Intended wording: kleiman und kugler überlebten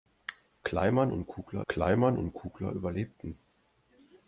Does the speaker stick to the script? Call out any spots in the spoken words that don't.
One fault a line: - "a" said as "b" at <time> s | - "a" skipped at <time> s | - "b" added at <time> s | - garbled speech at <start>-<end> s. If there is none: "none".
- "kleiman und kugler" added at 1.7 s